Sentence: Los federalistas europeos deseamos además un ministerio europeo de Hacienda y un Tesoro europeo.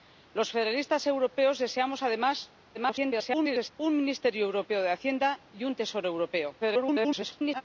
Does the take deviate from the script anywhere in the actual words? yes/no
yes